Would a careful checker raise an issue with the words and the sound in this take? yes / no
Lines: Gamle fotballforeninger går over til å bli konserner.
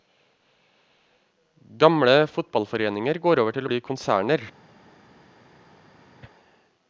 no